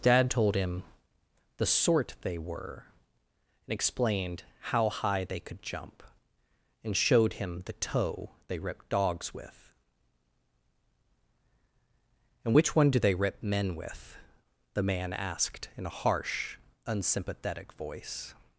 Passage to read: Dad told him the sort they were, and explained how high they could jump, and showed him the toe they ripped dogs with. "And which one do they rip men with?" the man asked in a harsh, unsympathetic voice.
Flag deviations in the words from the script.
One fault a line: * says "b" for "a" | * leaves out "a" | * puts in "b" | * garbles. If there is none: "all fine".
all fine